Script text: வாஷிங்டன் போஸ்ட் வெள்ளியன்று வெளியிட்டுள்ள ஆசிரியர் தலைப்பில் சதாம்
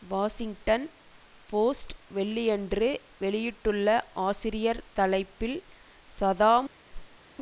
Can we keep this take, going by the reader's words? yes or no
yes